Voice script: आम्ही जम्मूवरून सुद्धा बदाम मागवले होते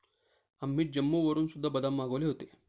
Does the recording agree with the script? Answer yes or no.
yes